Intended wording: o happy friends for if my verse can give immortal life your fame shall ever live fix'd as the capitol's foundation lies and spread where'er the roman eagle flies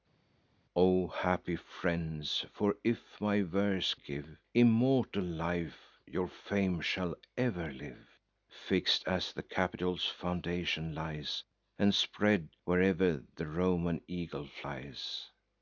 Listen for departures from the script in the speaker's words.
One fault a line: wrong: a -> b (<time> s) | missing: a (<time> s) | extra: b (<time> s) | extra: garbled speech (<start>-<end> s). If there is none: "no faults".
missing: can (3.9 s)